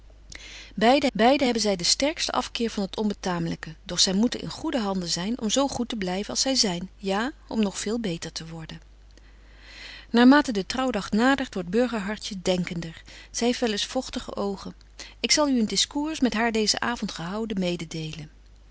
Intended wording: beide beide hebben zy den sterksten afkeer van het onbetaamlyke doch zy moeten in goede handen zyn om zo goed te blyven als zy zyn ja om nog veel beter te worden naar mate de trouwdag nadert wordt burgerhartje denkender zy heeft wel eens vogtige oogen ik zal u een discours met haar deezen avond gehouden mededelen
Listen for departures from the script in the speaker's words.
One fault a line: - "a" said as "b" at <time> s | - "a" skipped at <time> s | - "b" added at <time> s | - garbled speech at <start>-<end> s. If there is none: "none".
none